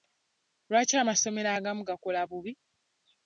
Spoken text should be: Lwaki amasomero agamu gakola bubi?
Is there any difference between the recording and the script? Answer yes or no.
no